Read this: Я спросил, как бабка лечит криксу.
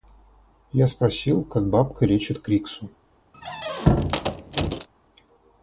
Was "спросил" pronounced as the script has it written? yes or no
yes